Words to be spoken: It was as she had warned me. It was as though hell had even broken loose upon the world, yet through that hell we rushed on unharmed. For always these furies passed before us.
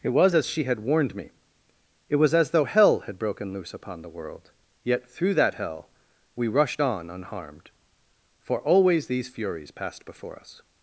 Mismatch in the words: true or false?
true